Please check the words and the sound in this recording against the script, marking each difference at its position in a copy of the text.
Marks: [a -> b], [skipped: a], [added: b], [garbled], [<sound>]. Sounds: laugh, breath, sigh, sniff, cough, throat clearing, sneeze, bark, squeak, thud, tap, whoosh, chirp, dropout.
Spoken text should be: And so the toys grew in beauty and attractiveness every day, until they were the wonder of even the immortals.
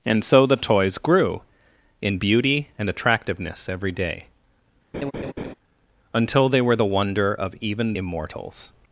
And so the toys grew in beauty and attractiveness every day, [laugh] until they were the wonder of even [skipped: the] immortals.